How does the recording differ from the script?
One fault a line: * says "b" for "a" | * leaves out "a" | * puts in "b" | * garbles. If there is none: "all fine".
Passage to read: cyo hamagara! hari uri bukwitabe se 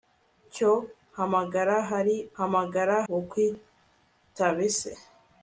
* says "hamagara" for "uri"